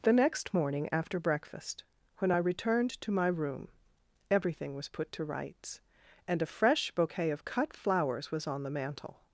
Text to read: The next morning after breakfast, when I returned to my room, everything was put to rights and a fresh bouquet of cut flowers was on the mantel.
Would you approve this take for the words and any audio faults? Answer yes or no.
yes